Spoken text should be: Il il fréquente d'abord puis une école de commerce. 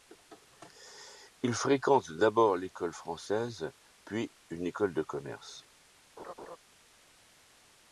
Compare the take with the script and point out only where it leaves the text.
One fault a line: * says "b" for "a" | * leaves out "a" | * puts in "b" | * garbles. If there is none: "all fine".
* leaves out "il"
* puts in "l'école française"